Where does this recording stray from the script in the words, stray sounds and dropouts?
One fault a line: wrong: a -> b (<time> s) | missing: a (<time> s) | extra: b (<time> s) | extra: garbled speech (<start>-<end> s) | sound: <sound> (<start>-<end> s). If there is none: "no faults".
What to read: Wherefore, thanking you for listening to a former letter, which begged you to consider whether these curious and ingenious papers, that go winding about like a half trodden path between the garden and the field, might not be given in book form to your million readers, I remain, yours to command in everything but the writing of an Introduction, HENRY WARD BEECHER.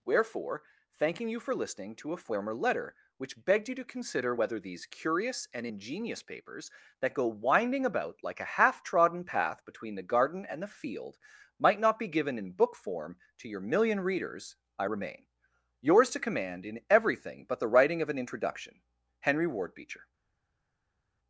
no faults